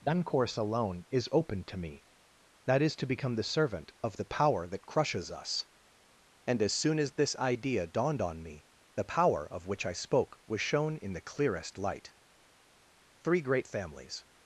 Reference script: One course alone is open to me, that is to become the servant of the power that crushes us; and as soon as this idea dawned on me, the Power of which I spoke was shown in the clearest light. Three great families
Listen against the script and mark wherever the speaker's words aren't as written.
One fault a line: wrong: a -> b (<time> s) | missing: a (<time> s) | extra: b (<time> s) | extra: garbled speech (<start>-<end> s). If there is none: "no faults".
no faults